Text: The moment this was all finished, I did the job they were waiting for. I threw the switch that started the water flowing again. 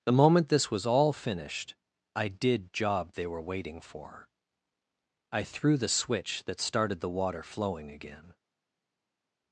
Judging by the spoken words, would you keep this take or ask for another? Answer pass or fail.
fail